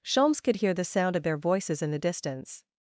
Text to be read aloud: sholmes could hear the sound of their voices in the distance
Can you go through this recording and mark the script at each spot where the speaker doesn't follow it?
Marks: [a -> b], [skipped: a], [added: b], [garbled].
sholmes could hear the sound of their voices in the distance